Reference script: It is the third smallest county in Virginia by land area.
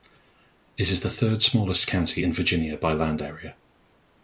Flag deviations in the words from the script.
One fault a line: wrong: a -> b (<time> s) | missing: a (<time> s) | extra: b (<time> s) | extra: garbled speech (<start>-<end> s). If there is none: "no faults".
no faults